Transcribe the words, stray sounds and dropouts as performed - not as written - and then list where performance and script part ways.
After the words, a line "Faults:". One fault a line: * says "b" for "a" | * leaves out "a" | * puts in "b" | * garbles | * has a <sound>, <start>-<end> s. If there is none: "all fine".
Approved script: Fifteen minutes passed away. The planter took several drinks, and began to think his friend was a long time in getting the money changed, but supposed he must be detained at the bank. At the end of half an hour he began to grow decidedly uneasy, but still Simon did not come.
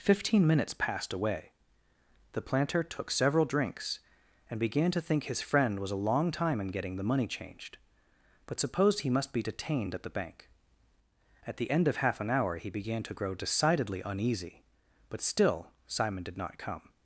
Fifteen minutes passed away. The planter took several drinks, and began to think his friend was a long time in getting the money changed, but supposed he must be detained at the bank. At the end of half an hour he began to grow decidedly uneasy, but still Simon did not come.
Faults:
all fine